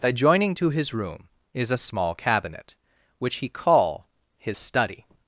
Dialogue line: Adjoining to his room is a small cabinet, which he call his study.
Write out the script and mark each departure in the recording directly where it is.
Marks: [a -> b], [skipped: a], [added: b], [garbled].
Adjoining to his room is a small cabinet, which he call his study.